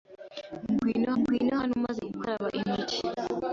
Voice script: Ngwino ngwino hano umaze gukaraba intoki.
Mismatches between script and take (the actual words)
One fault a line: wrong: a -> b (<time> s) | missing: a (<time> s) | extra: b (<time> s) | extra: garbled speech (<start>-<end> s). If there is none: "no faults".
no faults